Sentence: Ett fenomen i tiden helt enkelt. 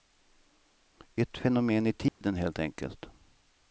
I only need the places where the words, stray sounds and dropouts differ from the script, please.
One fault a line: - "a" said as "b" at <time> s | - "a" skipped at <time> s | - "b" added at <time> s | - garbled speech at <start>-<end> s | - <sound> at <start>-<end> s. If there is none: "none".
- dropout at 2.1-2.2 s